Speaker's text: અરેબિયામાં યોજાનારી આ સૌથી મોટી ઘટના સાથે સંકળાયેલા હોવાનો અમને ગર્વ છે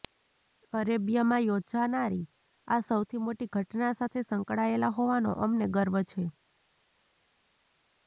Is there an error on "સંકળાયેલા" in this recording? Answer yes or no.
no